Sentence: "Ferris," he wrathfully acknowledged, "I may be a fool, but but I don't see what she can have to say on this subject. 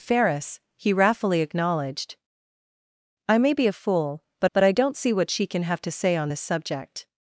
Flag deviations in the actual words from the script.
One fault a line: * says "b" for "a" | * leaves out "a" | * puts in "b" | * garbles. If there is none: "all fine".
all fine